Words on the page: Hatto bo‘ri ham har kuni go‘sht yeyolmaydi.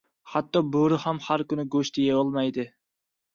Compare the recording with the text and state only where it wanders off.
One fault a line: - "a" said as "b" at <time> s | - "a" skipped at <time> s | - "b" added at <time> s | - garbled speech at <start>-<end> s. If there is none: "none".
none